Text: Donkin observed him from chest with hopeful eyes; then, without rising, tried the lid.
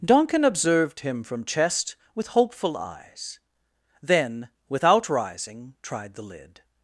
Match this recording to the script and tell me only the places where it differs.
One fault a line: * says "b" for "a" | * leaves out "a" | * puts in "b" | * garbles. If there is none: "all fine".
all fine